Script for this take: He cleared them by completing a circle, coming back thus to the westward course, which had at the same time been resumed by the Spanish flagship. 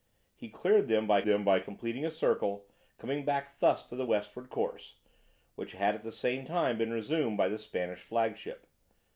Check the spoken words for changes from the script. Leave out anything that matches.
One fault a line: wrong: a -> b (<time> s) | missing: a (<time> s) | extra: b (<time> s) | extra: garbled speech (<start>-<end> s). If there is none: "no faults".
extra: them by (1.2 s)